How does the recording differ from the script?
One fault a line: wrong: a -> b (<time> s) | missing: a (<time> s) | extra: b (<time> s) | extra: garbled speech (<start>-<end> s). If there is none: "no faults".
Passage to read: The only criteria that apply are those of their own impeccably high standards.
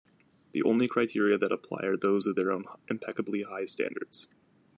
no faults